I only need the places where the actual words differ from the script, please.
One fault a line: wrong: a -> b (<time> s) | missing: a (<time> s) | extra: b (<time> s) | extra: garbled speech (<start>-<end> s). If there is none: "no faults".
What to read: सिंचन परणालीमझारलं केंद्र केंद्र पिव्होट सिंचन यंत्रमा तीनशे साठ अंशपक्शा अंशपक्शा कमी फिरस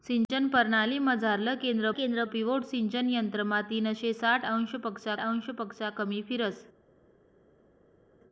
no faults